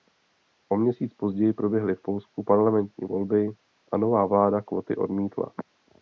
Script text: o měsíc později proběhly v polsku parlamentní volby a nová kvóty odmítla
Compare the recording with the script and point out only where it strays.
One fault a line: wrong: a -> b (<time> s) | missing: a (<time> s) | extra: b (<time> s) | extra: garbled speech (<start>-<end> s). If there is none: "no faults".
extra: vláda (4.2 s)